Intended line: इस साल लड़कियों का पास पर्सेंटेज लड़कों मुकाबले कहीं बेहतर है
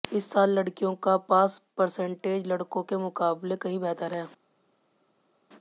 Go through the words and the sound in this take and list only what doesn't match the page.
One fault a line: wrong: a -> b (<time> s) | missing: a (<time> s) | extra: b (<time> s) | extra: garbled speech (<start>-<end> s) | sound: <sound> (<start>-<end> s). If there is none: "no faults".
extra: के (2.8 s)